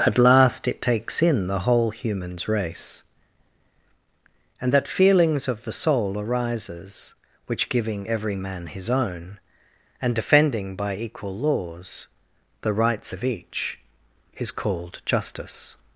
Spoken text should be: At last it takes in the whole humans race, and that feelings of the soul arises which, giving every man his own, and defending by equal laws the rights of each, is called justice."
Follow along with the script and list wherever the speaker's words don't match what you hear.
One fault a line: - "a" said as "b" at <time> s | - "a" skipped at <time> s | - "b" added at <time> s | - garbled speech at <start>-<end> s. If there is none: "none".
none